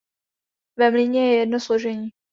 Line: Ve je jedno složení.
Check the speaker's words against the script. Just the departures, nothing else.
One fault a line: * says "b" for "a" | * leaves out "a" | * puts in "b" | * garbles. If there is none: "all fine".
* puts in "mlýně"